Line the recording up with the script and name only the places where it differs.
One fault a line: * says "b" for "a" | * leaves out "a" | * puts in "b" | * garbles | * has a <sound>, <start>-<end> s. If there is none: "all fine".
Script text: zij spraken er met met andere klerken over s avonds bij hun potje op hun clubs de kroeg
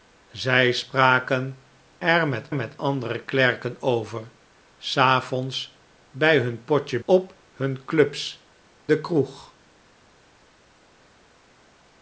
all fine